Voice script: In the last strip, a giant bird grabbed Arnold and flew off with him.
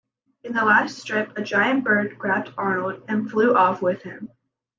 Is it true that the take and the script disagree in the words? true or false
false